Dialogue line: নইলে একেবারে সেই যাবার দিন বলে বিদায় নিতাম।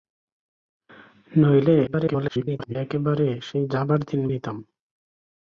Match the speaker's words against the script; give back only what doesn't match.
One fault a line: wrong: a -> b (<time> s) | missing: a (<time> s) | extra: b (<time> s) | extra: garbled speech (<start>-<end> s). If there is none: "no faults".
extra: garbled speech (1.9-2.8 s)
missing: বলে বিদায় (4.2 s)